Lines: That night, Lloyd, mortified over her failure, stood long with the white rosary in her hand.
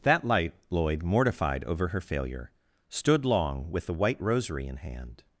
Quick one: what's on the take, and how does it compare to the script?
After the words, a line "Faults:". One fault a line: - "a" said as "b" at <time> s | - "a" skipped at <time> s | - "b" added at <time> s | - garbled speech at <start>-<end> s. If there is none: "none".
That light, Lloyd, mortified over her failure, stood long with the white rosary in hand.
Faults:
- "night" said as "light" at 0.2 s
- "her" skipped at 4.8 s